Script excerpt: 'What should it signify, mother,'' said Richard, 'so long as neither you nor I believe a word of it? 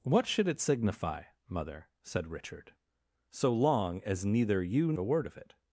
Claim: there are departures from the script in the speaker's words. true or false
true